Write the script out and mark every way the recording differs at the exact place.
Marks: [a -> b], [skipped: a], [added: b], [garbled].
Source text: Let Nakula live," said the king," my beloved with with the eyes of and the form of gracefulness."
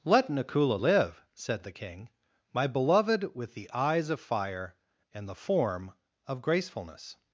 Let Nakula live," said the king," my beloved with [skipped: with] the eyes of [added: fire] and the form of gracefulness."